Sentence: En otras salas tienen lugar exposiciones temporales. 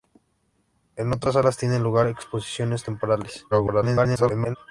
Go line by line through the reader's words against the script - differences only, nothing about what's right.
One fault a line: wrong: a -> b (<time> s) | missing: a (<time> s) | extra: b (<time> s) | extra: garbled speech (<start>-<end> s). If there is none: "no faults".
extra: garbled speech (3.5-4.6 s)